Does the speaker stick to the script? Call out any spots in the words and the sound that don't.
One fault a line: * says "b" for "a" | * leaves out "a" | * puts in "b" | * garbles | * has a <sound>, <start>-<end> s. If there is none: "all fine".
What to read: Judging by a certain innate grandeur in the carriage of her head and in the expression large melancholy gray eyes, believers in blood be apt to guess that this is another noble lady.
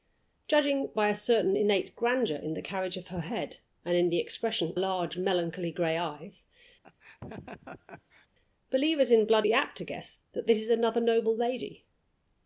* has a laugh, 6.8-8.3 s